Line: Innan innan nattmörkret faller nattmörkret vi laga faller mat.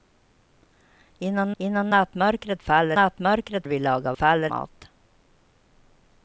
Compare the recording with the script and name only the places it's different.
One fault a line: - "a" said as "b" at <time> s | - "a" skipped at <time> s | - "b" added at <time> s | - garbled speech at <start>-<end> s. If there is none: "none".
none